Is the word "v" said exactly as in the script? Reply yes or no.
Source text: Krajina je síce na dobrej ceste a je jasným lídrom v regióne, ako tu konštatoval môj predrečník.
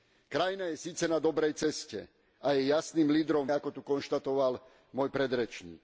no